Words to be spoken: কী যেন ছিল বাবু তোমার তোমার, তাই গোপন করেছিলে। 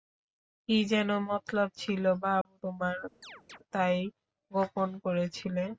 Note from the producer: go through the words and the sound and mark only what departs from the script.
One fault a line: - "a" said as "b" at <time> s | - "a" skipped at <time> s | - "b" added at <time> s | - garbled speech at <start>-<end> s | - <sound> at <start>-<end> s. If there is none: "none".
- "মতলব" added at 1.3 s
- dropout at 2.4-2.5 s
- "তোমার" skipped at 3.0 s
- chirp at 3.2-3.6 s